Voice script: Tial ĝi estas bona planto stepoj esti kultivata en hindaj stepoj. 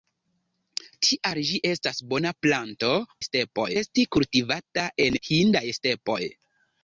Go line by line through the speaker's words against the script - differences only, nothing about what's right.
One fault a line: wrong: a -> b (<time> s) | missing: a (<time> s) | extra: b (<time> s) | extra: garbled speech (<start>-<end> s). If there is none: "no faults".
no faults